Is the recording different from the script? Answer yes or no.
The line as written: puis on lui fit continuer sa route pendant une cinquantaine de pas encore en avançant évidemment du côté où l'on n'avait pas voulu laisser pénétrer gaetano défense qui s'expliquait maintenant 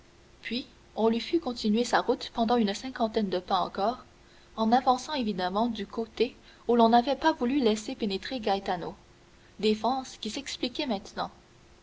no